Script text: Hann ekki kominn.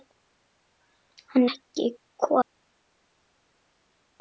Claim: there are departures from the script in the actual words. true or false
false